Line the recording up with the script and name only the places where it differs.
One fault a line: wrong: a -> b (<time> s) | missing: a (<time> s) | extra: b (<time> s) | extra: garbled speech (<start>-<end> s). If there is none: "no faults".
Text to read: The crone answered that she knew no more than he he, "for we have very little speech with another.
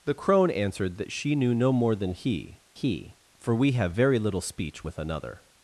no faults